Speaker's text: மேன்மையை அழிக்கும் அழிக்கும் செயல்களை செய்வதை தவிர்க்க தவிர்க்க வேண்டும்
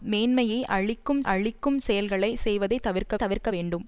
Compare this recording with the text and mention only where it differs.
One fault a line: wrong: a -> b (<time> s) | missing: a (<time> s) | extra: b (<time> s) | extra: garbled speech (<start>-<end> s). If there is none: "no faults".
no faults